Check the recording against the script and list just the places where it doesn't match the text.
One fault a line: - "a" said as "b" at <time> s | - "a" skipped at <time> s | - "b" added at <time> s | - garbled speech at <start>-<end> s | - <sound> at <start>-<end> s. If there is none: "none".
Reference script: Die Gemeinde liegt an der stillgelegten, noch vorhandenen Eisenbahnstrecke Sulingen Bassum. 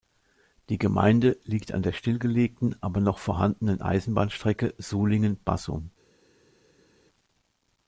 - "aber" added at 2.8 s